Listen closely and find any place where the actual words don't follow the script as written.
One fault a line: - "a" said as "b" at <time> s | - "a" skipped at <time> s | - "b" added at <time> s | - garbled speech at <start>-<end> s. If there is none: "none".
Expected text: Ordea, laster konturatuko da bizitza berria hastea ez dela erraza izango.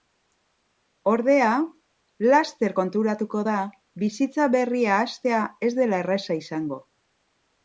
none